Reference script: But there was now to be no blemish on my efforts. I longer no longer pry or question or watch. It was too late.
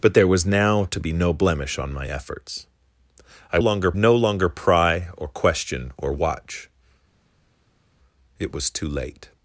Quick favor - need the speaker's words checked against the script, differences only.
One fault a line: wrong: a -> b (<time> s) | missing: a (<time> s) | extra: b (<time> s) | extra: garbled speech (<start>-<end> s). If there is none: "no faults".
no faults